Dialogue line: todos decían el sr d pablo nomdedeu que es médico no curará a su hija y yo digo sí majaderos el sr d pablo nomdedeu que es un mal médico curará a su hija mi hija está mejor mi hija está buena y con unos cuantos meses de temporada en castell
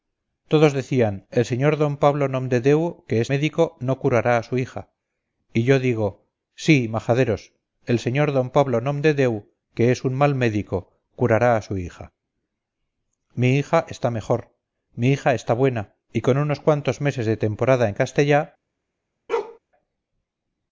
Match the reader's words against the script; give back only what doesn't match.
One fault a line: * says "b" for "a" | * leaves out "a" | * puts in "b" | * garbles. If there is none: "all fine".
all fine